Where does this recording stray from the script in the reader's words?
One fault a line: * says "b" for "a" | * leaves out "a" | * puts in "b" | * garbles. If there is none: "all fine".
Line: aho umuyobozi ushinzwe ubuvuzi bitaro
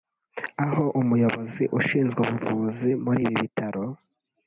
* puts in "muri ibi"